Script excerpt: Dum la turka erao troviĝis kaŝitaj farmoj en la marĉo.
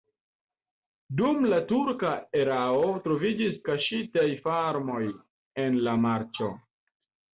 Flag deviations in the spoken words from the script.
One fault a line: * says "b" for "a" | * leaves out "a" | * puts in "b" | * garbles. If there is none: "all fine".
all fine